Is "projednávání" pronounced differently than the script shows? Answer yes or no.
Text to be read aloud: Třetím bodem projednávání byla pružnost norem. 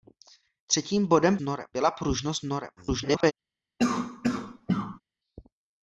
yes